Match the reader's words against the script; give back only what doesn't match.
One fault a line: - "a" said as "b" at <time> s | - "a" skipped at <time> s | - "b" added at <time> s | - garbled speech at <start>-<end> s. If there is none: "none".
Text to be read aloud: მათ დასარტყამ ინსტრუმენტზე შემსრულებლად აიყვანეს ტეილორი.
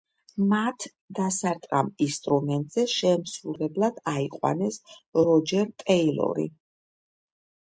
- "როჯერ" added at 5.2 s